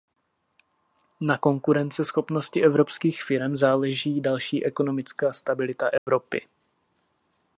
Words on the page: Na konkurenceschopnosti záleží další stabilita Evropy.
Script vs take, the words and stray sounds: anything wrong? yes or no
yes